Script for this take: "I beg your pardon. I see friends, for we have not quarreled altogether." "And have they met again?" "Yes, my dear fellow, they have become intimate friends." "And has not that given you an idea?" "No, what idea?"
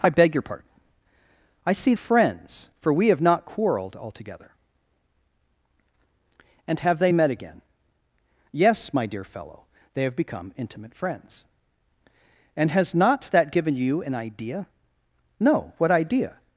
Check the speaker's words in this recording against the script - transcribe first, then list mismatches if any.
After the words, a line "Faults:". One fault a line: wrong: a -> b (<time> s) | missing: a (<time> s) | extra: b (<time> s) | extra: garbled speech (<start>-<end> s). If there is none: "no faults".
"I beg your pardon. I see friends, for we have not quarreled altogether." "And have they met again?" "Yes, my dear fellow, they have become intimate friends." "And has not that given you an idea?" "No, what idea?"
Faults:
no faults